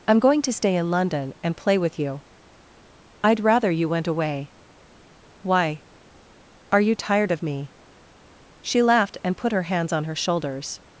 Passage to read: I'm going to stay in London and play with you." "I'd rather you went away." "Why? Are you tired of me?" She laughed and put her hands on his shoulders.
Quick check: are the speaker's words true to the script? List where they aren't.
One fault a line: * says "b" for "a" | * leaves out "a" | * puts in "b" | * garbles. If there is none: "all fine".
* says "her" for "his"